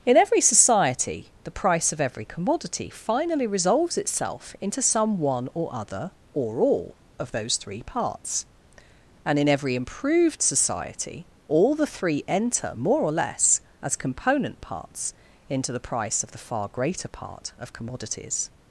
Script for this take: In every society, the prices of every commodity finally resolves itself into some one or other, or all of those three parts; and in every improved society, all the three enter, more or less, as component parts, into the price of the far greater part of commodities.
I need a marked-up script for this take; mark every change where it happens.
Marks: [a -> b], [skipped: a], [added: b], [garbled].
In every society, the [prices -> price] of every commodity finally resolves itself into some one or other, or all of those three parts; and in every improved society, all the three enter, more or less, as component parts, into the price of the far greater part of commodities.